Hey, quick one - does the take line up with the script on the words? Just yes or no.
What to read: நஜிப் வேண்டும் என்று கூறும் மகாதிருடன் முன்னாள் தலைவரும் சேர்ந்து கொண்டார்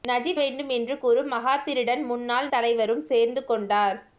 yes